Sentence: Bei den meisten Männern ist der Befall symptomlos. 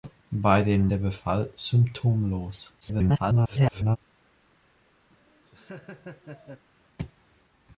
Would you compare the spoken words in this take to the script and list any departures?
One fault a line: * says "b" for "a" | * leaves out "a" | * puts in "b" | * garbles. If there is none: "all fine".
* leaves out "meisten Männern ist"
* garbles